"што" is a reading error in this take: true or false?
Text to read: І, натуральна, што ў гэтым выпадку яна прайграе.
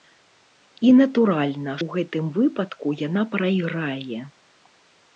true